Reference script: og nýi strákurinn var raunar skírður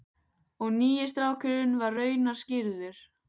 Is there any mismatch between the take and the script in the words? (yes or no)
no